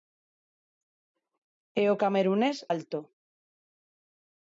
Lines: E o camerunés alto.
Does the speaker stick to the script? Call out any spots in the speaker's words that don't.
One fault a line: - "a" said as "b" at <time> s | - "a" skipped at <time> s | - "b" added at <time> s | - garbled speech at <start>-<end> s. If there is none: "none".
none